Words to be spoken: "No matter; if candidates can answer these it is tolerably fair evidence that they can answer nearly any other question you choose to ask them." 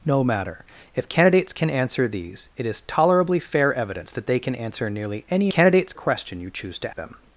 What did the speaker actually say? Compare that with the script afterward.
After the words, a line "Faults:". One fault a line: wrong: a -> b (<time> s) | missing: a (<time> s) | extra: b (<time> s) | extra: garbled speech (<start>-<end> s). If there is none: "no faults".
"No matter; if candidates can answer these it is tolerably fair evidence that they can answer nearly any candidates question you choose to them."
Faults:
wrong: other -> candidates (5.5 s)
missing: ask (7.0 s)